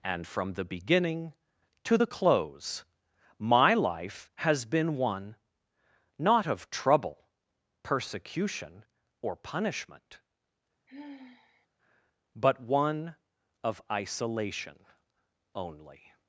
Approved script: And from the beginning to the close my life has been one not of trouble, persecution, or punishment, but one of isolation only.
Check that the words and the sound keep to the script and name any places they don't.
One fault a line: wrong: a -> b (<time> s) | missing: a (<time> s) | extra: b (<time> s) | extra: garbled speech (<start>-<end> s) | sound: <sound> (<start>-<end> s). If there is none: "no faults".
sound: sigh (10.9-11.7 s)